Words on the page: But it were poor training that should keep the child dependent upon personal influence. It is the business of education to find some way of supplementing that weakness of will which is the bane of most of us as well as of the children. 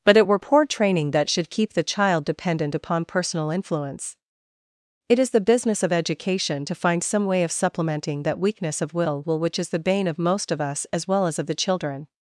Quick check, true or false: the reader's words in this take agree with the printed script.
false